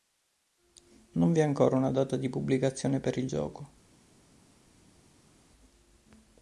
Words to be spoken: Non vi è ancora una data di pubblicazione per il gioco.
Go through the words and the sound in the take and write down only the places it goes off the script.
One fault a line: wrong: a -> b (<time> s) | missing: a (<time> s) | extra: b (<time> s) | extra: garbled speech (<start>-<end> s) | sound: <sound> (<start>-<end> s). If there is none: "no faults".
no faults